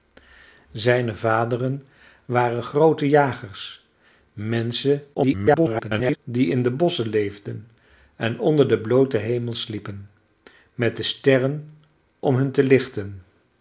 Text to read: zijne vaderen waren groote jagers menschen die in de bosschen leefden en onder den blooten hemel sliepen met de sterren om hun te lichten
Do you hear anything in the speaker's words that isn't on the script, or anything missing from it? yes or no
yes